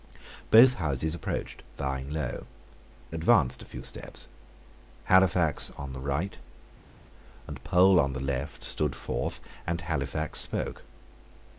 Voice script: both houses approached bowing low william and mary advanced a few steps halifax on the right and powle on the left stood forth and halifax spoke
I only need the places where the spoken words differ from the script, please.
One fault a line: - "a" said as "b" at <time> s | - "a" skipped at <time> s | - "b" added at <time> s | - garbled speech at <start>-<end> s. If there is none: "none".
- "william and mary" skipped at 2.5 s